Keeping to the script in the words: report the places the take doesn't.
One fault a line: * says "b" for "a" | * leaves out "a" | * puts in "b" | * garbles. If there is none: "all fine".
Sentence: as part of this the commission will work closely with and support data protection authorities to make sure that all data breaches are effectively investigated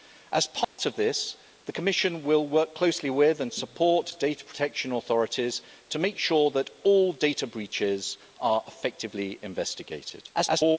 * garbles